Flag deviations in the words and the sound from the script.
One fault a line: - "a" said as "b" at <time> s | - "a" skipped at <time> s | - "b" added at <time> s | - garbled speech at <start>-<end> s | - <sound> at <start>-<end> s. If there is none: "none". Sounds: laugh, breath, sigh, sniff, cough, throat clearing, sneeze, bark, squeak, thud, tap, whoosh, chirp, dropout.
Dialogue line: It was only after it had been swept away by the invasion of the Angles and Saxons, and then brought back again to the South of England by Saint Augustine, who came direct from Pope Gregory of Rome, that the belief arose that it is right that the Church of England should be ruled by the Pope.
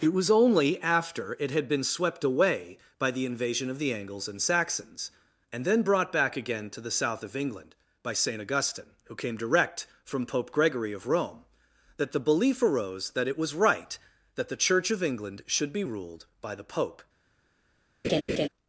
- "is" said as "was" at 13.4 s
- laugh at 18.0-18.5 s